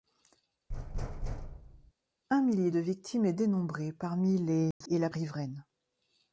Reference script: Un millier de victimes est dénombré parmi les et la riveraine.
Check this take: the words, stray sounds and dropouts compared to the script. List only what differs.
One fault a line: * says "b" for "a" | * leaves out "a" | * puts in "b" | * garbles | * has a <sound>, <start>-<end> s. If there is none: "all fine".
* has a thud, 0.7-1.9 s
* has a dropout, 4.7-4.8 s